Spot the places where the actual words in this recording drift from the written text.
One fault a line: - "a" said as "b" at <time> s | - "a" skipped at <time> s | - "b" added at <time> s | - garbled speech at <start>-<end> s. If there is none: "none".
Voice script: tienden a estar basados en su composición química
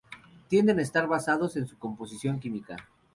none